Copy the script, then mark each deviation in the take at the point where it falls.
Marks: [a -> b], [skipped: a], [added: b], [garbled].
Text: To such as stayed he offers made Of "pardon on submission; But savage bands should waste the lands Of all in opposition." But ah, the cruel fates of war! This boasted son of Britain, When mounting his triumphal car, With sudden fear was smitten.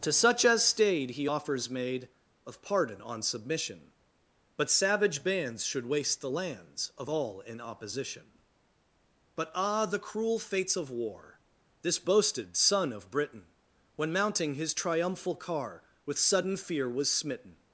To such as stayed he offers made Of "pardon on submission; But savage bands should waste the lands Of all in opposition." But ah, the cruel fates of war! This boasted son of Britain, When mounting his triumphal car, With sudden fear was smitten.